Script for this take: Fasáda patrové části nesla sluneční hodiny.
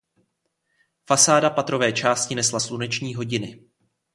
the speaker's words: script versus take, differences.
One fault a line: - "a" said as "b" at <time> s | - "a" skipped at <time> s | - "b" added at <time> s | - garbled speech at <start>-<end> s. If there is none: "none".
none